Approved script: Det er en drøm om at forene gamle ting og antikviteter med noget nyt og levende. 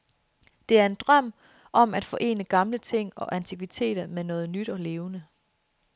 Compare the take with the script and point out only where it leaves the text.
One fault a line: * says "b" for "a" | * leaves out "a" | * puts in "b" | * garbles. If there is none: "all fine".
all fine